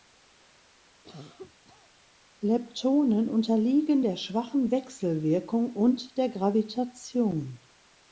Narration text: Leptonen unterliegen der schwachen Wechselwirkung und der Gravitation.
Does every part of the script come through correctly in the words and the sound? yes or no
no